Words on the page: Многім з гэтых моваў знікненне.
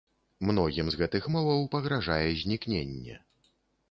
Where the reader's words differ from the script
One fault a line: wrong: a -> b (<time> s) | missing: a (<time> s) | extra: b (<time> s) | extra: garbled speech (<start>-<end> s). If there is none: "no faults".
extra: пагражае (1.7 s)